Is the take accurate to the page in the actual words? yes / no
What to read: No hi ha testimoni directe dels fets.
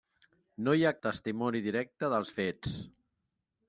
yes